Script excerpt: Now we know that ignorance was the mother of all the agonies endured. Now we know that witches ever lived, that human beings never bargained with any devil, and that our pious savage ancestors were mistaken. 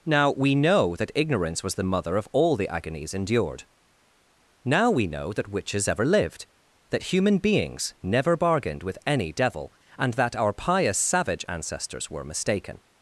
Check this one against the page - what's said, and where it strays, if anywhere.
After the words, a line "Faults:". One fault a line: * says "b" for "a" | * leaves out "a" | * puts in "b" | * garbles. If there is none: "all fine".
Now we know that ignorance was the mother of all the agonies endured. Now we know that witches ever lived, that human beings never bargained with any devil, and that our pious savage ancestors were mistaken.
Faults:
all fine